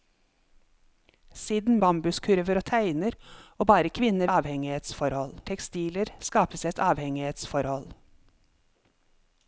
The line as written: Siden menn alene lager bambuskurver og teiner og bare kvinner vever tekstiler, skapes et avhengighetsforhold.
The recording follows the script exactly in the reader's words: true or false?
false